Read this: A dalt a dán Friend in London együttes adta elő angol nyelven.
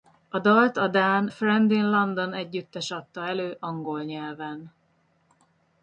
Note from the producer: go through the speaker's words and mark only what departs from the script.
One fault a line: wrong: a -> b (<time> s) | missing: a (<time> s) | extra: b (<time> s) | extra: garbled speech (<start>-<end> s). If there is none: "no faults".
no faults